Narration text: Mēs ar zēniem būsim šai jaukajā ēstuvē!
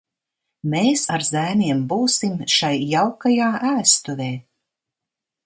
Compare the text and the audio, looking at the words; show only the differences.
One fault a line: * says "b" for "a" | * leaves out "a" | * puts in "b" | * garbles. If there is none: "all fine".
all fine